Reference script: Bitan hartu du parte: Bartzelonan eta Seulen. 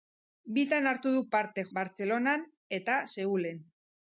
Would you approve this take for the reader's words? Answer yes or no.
yes